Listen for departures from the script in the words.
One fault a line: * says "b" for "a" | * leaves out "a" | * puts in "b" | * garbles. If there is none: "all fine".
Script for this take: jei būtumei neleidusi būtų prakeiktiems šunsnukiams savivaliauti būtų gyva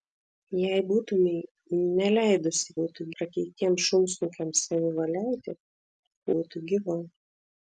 all fine